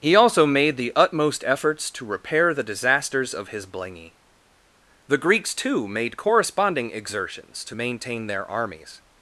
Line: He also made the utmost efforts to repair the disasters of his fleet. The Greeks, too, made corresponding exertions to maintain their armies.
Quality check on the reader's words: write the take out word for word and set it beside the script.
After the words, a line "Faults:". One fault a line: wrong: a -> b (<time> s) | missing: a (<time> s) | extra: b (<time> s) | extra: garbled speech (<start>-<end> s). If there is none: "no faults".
He also made the utmost efforts to repair the disasters of his blingy. The Greeks, too, made corresponding exertions to maintain their armies.
Faults:
wrong: fleet -> blingy (3.7 s)